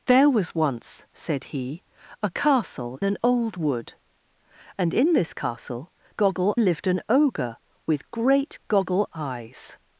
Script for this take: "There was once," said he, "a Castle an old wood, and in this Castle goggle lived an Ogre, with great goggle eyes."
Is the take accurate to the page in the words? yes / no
yes